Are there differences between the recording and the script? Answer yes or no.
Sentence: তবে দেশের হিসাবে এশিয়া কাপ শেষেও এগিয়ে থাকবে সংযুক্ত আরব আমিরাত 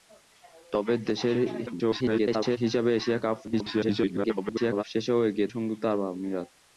yes